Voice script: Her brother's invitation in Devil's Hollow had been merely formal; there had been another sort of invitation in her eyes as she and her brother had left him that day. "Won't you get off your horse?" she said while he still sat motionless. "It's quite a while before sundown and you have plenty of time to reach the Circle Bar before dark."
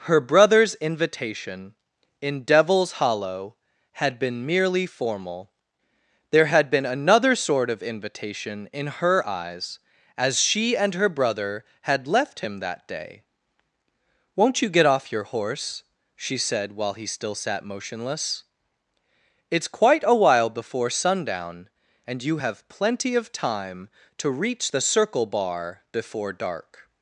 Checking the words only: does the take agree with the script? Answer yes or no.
yes